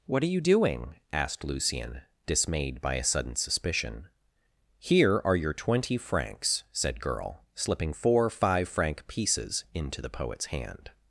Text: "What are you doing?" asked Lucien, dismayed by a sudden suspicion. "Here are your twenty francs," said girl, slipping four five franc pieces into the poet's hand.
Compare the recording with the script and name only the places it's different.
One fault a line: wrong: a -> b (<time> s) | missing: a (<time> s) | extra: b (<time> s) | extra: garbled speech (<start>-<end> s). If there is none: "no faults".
no faults